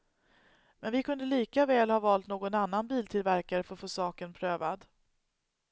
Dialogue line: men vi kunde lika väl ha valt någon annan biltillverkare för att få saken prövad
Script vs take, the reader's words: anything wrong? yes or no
no